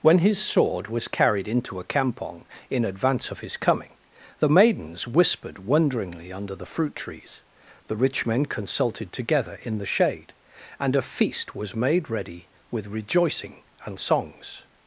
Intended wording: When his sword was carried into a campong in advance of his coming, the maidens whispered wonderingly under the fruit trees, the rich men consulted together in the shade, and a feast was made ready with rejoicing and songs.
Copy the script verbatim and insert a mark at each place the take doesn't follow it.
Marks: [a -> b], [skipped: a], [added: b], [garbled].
When his sword was carried into a campong in advance of his coming, the maidens whispered wonderingly under the fruit trees, the rich men consulted together in the shade, and a feast was made ready with rejoicing and songs.